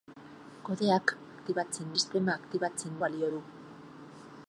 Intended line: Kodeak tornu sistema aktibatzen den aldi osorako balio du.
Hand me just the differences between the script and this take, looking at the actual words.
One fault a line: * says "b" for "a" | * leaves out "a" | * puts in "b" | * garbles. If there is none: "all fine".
* says "aktibatzen" for "tornu"
* leaves out "den aldi osorako"